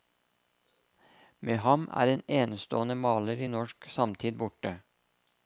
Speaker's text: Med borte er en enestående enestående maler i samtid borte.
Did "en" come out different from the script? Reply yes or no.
no